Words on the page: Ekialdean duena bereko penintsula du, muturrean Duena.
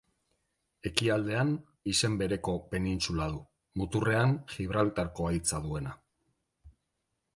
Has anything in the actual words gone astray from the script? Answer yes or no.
yes